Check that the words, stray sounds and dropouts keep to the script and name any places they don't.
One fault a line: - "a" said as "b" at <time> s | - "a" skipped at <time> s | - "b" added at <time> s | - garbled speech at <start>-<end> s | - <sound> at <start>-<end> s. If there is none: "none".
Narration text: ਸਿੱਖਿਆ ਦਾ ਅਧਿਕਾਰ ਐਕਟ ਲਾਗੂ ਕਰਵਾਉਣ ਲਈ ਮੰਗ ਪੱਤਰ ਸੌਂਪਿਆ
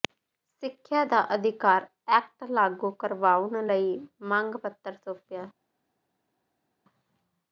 none